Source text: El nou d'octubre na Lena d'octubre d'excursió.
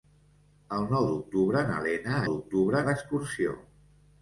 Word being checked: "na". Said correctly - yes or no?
yes